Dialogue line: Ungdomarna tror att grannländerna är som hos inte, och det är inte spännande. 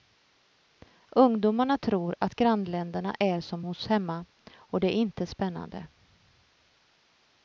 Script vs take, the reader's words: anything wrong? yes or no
yes